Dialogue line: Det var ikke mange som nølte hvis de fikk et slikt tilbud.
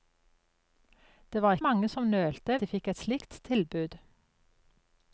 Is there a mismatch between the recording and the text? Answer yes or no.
yes